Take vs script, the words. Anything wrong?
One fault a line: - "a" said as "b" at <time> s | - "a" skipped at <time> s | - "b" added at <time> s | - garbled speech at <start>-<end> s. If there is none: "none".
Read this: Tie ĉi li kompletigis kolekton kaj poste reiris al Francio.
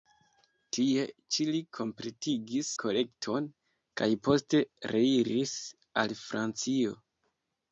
none